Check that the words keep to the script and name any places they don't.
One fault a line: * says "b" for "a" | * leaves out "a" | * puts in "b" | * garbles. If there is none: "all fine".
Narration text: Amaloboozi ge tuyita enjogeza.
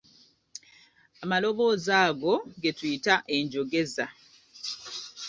* puts in "ago"